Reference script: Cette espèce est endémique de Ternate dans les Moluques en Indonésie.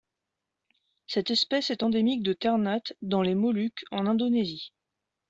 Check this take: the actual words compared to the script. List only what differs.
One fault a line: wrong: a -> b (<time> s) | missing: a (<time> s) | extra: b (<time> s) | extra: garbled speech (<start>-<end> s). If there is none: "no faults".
no faults